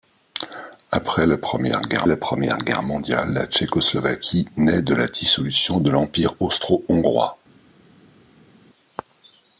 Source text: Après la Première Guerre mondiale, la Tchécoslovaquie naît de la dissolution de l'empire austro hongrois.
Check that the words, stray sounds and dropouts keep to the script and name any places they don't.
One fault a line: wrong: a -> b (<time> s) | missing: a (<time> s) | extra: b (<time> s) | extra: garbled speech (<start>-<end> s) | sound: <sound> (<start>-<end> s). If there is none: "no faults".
extra: la Première Guerre (2.1 s)